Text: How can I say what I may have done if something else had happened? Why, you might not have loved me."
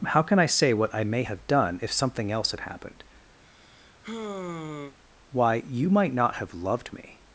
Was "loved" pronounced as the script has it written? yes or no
yes